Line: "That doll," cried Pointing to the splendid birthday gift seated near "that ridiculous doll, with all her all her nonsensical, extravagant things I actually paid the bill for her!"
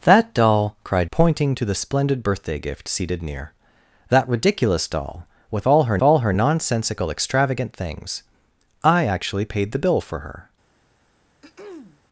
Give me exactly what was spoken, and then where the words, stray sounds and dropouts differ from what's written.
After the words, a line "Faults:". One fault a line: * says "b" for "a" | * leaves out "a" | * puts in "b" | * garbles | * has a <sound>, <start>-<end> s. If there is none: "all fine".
"That doll," cried Pointing to the splendid birthday gift seated near "that ridiculous doll, with all her all her nonsensical, extravagant things I actually paid the bill for her!"
Faults:
* has a throat clearing, 11.4-12.0 s